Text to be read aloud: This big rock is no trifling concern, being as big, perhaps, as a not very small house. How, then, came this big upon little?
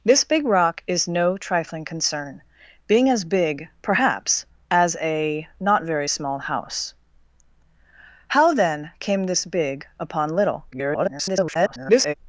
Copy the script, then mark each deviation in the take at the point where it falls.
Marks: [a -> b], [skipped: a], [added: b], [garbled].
This big rock is no trifling concern, being as big, perhaps, as a not very small house. How, then, came this big upon little? [garbled]